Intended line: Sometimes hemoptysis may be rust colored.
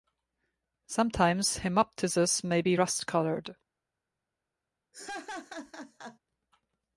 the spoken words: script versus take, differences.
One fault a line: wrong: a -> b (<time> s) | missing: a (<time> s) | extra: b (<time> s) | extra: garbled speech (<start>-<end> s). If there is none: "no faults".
no faults